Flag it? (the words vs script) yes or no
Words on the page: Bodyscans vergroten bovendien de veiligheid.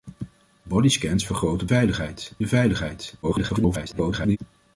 yes